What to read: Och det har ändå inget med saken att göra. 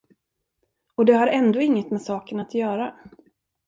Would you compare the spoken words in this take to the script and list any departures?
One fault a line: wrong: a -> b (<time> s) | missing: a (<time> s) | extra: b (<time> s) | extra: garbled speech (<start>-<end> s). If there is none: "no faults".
no faults